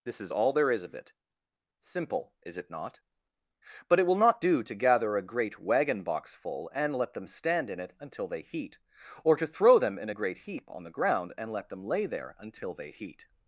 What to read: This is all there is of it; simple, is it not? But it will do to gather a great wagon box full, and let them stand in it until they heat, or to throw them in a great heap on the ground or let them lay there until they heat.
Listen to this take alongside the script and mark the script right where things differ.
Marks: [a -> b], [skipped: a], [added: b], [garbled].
This is all there is of it; simple, is it not? But it will [added: not] do to gather a great wagon box full, and let them stand in it until they heat, or to throw them in a great heap on the ground [or -> and] let them lay there until they heat.